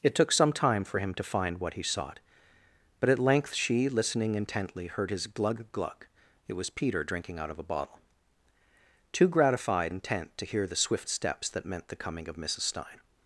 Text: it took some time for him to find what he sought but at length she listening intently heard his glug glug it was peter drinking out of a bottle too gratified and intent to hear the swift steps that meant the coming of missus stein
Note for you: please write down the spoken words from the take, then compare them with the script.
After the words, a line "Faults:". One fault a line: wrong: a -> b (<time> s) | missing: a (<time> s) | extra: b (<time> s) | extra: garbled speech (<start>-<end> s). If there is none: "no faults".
it took some time for him to find what he sought but at length she listening intently heard his glug glug it was peter drinking out of a bottle too gratified intent to hear the swift steps that meant the coming of missus stein
Faults:
missing: and (9.9 s)